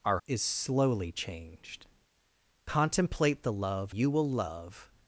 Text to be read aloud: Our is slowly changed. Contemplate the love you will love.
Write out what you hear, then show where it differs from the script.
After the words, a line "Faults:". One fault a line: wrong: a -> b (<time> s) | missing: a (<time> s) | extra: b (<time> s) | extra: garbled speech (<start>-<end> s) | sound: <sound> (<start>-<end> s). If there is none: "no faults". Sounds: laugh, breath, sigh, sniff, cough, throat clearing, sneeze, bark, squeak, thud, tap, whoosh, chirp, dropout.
Our is slowly changed. Contemplate the love you will love.
Faults:
no faults